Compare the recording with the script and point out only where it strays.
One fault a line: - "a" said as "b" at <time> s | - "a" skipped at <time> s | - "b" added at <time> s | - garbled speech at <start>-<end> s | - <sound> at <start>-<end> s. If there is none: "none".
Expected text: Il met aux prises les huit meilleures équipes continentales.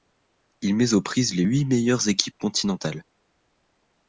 none